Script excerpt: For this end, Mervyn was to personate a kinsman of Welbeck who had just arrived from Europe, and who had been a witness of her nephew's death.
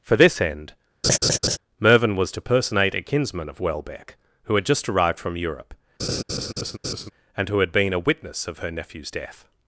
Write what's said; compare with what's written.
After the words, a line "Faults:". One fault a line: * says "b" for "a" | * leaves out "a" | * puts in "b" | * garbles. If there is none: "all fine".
For this end, Mervyn was to personate a kinsman of Welbeck who had just arrived from Europe, and who had been a witness of her nephew's death.
Faults:
all fine